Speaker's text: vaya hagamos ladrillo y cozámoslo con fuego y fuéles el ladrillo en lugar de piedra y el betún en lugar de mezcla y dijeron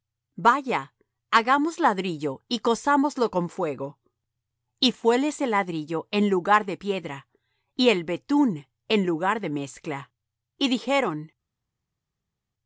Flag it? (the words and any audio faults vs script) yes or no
no